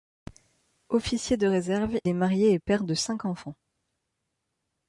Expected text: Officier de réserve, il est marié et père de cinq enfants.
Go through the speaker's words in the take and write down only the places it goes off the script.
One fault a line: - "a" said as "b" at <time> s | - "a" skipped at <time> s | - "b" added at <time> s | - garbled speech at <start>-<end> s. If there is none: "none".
- "il" skipped at 2.0 s